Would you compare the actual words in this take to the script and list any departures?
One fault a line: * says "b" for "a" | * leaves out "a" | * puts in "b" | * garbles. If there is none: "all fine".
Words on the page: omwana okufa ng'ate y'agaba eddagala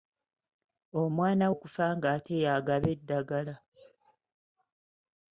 all fine